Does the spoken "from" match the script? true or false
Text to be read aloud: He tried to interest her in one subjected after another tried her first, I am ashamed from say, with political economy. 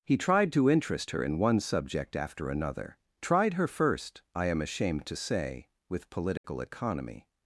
false